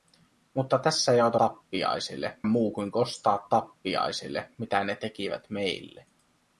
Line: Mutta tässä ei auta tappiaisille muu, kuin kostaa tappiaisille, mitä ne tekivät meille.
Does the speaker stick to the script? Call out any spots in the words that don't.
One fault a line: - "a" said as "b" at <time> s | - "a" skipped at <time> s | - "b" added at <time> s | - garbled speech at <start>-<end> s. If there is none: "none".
none